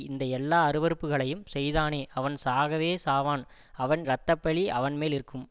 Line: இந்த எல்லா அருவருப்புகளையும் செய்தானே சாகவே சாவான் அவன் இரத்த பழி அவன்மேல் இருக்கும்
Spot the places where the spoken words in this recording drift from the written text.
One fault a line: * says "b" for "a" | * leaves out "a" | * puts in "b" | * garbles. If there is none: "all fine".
* puts in "அவன்"